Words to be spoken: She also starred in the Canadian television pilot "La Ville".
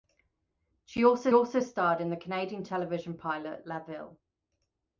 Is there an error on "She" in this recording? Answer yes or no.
no